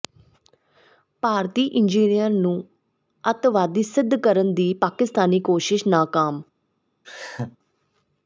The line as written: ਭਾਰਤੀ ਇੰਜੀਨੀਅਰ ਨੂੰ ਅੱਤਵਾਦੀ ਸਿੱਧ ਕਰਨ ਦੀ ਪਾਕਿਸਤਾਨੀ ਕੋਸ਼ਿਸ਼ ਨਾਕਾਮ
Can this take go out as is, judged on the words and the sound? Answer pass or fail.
fail